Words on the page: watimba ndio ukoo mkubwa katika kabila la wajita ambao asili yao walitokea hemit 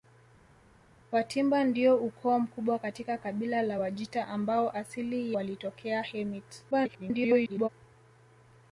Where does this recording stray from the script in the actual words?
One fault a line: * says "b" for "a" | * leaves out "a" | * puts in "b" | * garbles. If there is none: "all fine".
* leaves out "yao"
* garbles